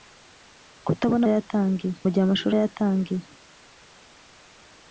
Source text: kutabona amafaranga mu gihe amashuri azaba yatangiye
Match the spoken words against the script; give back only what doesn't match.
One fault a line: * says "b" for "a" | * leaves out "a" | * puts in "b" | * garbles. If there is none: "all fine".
* says "yatangiye" for "amafaranga"
* leaves out "azaba"